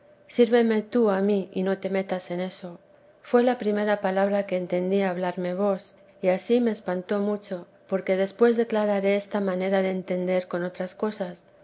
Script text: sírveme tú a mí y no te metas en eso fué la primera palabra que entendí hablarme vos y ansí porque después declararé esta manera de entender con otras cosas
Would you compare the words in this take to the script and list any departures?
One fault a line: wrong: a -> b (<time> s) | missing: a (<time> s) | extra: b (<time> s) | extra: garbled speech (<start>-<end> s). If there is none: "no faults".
extra: me espantó mucho (6.6 s)